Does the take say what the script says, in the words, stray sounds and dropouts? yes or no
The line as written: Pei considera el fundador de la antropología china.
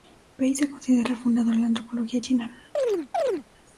no